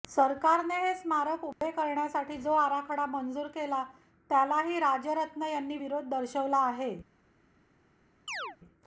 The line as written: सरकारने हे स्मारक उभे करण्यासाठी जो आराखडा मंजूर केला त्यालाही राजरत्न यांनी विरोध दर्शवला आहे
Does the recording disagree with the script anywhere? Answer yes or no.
no